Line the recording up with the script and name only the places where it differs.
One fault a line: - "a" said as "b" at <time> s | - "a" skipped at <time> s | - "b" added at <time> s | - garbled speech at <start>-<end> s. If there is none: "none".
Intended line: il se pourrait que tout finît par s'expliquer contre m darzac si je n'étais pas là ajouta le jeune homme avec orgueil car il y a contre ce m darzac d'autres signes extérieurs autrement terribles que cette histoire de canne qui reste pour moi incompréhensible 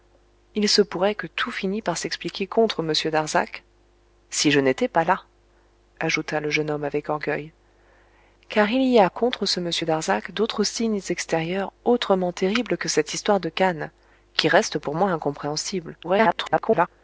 - garbled speech at 16.0-16.9 s